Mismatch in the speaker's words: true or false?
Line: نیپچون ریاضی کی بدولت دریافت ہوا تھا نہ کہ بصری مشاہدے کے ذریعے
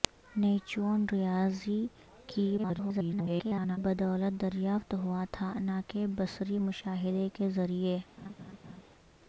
true